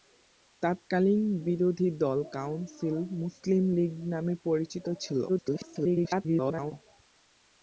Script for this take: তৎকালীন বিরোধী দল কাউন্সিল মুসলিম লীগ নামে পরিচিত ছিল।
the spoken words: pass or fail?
fail